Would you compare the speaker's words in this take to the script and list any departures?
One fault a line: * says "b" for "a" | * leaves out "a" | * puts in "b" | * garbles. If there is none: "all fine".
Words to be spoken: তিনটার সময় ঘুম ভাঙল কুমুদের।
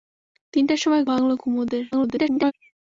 * leaves out "ঘুম"
* garbles